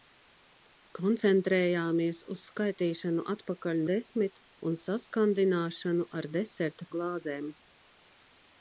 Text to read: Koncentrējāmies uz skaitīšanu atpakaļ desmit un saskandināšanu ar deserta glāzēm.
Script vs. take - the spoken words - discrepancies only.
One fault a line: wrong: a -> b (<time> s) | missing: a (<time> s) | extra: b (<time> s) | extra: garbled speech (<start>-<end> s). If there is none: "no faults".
no faults